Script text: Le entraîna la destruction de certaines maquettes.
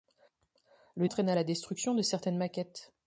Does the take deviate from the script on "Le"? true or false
false